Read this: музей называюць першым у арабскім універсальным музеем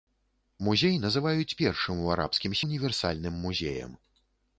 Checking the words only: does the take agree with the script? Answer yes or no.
yes